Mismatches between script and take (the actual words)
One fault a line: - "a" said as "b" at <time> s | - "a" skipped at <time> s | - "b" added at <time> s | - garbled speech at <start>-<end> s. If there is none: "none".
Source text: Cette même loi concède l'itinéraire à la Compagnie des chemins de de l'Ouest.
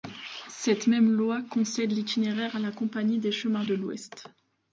none